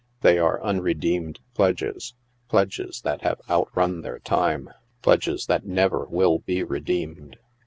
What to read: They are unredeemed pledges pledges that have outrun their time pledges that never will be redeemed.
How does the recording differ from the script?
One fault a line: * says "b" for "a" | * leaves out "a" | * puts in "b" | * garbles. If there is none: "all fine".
all fine